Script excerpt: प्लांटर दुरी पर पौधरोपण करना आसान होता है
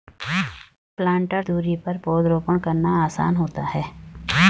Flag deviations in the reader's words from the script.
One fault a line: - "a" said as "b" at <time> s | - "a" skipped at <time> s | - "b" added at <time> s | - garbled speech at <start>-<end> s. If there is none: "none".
none